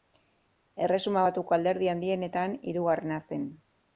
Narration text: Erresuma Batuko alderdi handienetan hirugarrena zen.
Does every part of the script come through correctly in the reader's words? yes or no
yes